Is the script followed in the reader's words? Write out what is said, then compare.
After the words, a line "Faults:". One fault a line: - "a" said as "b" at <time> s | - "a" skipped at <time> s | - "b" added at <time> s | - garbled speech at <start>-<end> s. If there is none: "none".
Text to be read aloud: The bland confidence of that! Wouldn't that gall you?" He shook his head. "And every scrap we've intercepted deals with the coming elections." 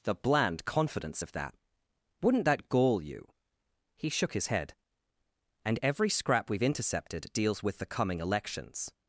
The bland confidence of that! Wouldn't that gall you?" He shook his head. "And every scrap we've intercepted deals with the coming elections."
Faults:
none